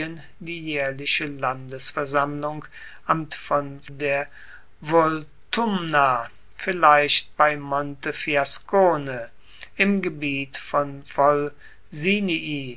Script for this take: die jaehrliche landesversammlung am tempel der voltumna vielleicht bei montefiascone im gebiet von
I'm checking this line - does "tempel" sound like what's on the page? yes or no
no